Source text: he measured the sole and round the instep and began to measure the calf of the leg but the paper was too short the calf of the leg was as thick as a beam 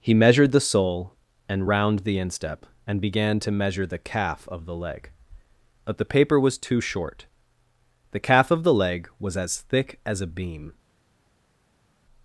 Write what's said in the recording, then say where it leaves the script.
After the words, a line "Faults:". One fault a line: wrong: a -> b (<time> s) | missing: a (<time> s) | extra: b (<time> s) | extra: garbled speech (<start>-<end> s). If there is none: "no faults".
he measured the sole and round the instep and began to measure the calf of the leg but the paper was too short the calf of the leg was as thick as a beam
Faults:
no faults